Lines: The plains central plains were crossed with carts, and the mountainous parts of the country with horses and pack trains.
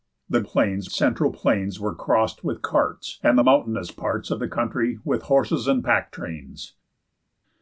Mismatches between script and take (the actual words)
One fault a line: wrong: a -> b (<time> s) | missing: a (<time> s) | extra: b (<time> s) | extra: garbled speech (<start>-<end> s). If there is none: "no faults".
no faults